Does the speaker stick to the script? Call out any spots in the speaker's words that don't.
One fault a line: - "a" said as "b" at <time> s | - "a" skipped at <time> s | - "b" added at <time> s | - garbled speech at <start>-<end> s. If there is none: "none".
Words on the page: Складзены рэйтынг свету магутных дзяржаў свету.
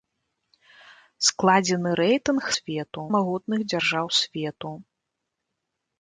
none